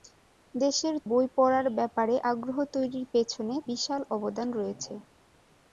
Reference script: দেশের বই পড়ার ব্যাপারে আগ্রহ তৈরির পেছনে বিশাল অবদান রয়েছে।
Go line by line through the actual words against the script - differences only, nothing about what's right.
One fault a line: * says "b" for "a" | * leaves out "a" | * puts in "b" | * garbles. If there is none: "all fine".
all fine